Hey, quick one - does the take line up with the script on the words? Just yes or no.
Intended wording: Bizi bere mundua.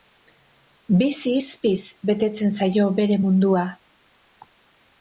no